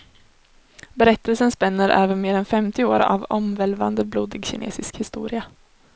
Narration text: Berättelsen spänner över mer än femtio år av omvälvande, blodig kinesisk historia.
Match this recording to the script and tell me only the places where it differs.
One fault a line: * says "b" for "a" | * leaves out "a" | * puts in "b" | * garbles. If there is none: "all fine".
all fine